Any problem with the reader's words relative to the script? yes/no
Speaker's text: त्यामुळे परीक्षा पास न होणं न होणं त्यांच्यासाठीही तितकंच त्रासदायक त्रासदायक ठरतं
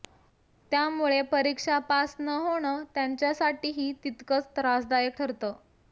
yes